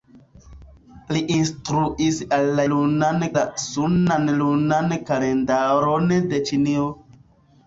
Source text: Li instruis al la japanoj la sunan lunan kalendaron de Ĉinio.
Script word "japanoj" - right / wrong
wrong